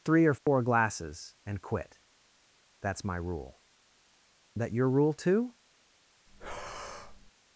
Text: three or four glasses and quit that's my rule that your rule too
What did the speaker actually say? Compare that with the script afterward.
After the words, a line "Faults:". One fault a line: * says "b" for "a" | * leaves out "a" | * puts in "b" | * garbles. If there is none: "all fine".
three or four glasses and quit that's my rule that your rule too
Faults:
all fine